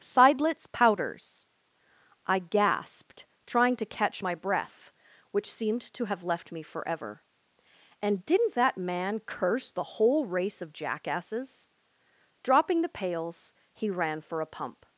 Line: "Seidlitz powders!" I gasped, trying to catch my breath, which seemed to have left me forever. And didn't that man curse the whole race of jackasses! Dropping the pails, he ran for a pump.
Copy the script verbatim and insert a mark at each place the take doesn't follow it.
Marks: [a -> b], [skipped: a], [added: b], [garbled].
"Seidlitz powders!" I gasped, trying to catch my breath, which seemed to have left me forever. And didn't that man curse the whole race of jackasses! Dropping the pails, he ran for a pump.